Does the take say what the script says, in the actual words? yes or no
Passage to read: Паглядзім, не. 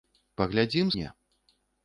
yes